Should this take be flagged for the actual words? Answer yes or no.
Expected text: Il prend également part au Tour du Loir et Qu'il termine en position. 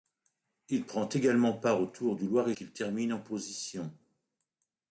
no